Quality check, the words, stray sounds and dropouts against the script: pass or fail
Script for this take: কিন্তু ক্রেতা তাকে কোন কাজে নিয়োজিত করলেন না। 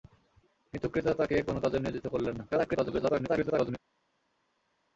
fail